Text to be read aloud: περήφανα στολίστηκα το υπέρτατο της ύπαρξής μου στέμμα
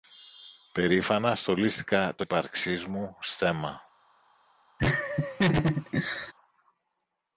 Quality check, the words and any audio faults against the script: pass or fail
fail